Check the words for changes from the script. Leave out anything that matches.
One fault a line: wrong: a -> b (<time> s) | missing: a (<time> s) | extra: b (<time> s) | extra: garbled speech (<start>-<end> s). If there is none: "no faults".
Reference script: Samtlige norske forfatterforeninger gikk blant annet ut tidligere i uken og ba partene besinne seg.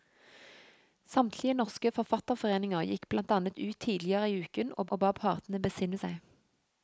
extra: og (4.9 s)